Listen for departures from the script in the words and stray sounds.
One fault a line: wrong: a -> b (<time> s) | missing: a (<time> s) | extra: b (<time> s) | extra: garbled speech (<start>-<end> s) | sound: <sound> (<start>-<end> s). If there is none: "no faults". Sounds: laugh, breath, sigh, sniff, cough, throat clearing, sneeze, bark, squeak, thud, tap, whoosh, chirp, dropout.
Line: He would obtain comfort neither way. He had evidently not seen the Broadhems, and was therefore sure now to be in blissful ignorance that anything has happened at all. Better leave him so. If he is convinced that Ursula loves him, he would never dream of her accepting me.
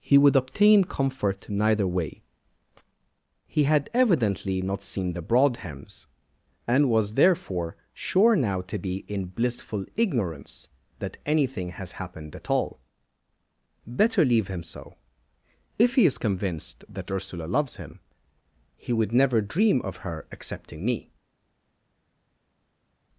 no faults